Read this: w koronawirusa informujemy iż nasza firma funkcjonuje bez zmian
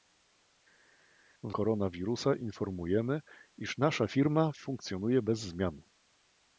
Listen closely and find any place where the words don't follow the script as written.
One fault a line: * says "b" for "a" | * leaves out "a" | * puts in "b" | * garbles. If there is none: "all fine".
all fine